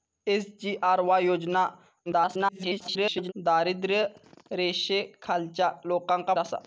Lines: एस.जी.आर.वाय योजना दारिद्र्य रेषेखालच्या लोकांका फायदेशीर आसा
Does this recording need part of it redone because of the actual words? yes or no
yes